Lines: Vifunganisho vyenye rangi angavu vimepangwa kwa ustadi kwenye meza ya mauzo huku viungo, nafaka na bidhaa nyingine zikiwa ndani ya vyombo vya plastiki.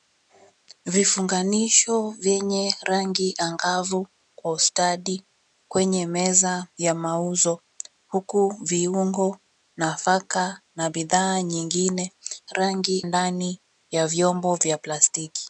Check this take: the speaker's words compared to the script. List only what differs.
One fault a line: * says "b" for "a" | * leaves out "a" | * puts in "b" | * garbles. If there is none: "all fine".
* leaves out "vimepangwa"
* says "rangi" for "zikiwa"